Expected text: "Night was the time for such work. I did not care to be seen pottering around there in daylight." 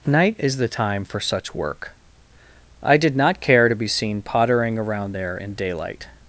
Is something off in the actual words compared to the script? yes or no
yes